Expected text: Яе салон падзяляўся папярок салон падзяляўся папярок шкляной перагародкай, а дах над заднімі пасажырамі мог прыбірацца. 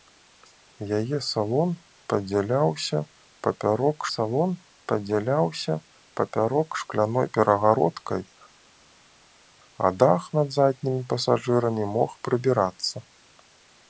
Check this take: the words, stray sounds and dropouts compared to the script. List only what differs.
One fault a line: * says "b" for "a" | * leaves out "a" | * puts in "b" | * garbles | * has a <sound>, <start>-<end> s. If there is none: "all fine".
all fine